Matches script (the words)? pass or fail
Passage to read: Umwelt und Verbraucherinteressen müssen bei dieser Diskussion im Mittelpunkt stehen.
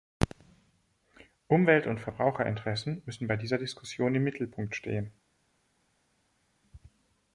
pass